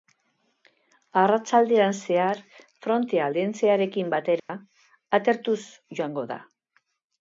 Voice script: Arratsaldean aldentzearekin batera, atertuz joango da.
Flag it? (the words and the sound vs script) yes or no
yes